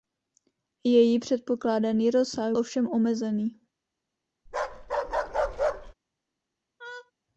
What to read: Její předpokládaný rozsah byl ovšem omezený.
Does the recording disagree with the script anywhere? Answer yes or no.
yes